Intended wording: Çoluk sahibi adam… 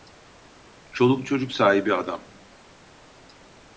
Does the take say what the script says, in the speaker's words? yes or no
no